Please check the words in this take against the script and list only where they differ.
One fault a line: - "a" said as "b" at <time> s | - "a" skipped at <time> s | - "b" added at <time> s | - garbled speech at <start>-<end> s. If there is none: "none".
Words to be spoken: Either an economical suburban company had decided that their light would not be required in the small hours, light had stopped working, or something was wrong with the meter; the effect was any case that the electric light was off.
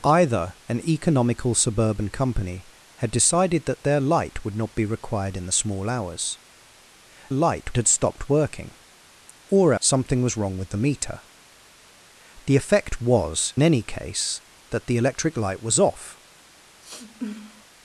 none